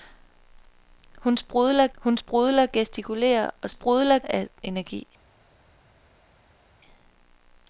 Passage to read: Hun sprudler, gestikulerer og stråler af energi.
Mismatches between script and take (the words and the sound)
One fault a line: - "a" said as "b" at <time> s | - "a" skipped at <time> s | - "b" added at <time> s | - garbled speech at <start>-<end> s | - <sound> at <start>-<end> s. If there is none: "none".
- "hun sprudler" added at 2.0 s
- "stråler" said as "sprudler" at 3.7 s